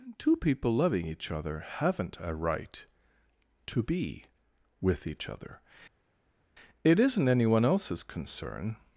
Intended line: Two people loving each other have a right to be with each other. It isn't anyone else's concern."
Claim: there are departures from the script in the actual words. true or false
true